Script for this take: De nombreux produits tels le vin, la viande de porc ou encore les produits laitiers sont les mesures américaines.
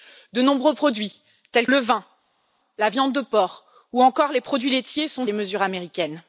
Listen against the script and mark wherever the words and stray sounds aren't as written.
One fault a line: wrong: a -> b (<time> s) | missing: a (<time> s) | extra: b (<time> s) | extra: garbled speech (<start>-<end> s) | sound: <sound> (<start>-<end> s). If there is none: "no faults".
no faults